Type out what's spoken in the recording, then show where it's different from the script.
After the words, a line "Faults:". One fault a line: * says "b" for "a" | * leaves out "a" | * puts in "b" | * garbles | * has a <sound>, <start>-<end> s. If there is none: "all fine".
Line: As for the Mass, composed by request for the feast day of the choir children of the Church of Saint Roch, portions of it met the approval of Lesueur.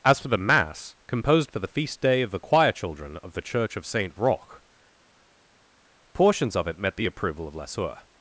As for the Mass, composed for the feast day of the choir children of the Church of Saint Roch, portions of it met the approval of Lesueur.
Faults:
* leaves out "by request"